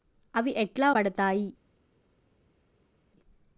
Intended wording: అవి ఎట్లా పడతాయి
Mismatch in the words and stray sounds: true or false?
false